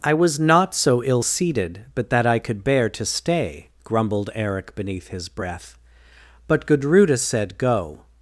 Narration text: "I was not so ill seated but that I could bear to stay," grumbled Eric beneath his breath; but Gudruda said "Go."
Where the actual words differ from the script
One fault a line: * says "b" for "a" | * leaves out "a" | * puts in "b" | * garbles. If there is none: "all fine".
all fine